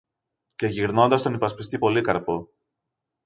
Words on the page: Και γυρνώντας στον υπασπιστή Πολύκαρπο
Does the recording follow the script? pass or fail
pass